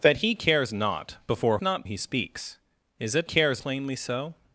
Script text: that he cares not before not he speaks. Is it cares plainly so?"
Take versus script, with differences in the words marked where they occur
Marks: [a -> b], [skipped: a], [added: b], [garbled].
that he cares not before not he speaks. Is it cares plainly so?"